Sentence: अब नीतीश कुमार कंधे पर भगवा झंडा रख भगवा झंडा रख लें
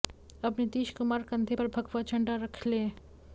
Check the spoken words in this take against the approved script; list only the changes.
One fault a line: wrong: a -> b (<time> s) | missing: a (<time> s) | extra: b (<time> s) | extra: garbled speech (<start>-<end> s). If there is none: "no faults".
missing: भगवा झंडा रख (2.7 s)